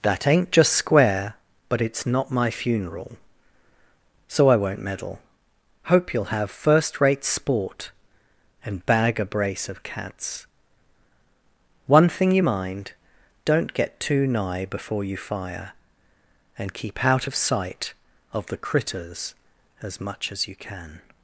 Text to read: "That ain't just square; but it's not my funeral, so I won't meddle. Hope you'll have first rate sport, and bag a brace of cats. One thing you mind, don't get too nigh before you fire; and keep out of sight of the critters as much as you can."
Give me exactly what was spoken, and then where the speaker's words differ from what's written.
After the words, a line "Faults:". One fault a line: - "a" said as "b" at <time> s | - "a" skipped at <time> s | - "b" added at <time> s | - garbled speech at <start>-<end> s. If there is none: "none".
"That ain't just square; but it's not my funeral, so I won't meddle. Hope you'll have first rate sport, and bag a brace of cats. One thing you mind, don't get too nigh before you fire; and keep out of sight of the critters as much as you can."
Faults:
none